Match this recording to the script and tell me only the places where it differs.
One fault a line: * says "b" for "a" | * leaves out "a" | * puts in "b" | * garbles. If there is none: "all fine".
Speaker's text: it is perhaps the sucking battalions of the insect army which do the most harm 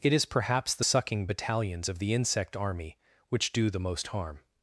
all fine